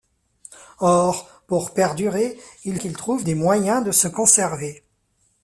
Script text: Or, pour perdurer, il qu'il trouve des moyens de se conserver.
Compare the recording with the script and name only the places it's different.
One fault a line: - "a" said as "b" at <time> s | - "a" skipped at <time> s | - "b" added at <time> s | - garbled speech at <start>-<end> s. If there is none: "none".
none